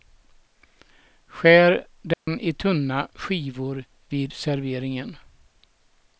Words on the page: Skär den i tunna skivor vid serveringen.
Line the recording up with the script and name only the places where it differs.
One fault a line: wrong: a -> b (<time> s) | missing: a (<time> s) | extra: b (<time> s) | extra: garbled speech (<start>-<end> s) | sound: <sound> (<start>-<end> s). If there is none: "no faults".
sound: dropout (2.1-2.3 s)